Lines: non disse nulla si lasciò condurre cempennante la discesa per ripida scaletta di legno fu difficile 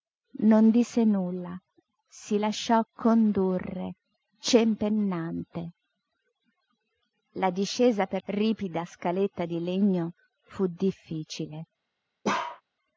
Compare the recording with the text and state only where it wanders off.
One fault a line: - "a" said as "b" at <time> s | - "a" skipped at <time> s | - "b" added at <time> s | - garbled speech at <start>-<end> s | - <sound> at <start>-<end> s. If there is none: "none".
- bark at 12.2-12.6 s